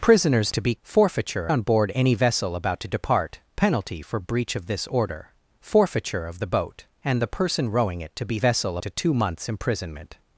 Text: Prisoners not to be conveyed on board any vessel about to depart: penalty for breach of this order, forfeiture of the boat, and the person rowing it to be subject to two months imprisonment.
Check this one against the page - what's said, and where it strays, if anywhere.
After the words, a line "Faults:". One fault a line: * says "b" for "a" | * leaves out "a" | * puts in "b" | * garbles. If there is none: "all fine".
Prisoners to be forfeiture on board any vessel about to depart: penalty for breach of this order, forfeiture of the boat, and the person rowing it to be vessel to two months imprisonment.
Faults:
* leaves out "not"
* says "forfeiture" for "conveyed"
* says "vessel" for "subject"